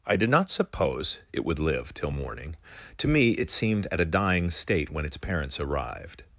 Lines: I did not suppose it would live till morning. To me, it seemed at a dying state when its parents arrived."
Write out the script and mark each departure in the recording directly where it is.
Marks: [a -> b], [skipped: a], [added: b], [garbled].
I did not suppose it would live till morning. To me, it seemed at a dying state when its parents arrived."